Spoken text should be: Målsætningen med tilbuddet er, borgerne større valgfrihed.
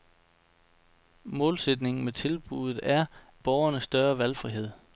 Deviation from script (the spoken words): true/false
false